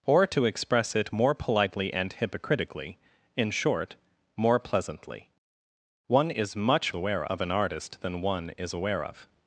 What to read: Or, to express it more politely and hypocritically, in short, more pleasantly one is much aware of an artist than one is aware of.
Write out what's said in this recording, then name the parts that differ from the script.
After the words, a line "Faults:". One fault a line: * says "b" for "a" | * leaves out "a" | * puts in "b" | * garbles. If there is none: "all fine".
Or, to express it more politely and hypocritically, in short, more pleasantly one is much aware of an artist than one is aware of.
Faults:
all fine